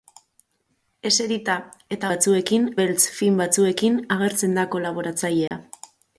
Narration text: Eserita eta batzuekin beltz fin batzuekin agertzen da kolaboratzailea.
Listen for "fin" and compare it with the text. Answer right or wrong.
right